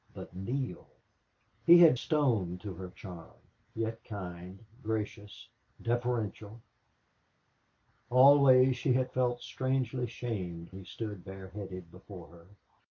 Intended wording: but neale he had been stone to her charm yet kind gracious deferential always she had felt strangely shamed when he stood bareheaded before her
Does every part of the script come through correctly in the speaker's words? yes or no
no